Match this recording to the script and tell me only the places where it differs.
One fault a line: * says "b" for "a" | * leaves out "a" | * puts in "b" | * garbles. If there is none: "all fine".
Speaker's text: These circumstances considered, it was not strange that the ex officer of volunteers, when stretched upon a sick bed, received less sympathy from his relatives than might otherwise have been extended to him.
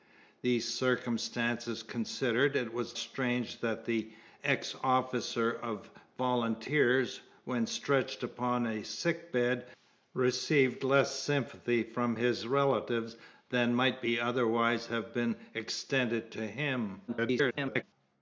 * leaves out "not"
* garbles